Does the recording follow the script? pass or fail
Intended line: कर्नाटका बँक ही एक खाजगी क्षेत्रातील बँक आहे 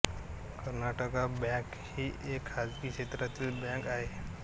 pass